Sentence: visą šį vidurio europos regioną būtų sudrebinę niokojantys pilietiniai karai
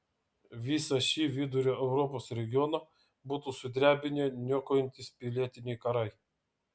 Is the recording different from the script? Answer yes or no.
no